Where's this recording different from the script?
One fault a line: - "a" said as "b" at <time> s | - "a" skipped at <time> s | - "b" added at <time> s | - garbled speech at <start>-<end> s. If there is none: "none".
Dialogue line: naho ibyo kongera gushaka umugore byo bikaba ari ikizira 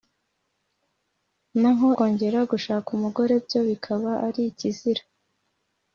- "ibyo" skipped at 1.9 s